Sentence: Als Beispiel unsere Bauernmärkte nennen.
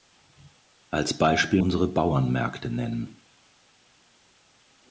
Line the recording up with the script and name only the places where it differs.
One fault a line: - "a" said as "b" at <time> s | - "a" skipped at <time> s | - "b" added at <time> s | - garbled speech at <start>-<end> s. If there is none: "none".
none